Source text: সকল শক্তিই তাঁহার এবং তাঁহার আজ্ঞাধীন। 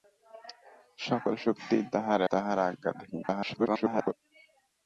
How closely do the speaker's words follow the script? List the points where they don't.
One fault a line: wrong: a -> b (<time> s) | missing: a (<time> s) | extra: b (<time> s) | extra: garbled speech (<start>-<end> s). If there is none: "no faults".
missing: এবং (2.2 s)
extra: garbled speech (3.2-4.1 s)